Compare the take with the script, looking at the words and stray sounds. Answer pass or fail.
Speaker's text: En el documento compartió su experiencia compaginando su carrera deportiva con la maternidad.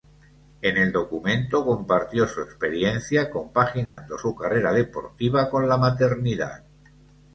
fail